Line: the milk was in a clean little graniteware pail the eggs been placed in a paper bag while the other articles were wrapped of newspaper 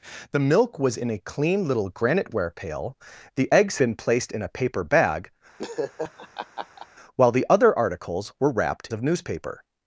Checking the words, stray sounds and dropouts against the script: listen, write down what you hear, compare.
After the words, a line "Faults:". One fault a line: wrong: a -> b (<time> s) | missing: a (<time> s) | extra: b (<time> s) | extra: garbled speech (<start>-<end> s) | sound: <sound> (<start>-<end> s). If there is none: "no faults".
the milk was in a clean little graniteware pail the eggs been placed in a paper bag while the other articles were wrapped of newspaper
Faults:
sound: laugh (5.6-6.9 s)